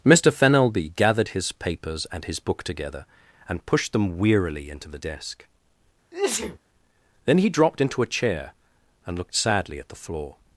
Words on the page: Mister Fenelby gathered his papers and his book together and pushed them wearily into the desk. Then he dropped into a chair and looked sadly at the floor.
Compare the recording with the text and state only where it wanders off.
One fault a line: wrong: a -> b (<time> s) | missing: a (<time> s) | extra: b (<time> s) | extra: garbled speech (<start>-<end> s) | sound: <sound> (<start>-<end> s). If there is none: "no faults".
sound: sneeze (6.1-6.6 s)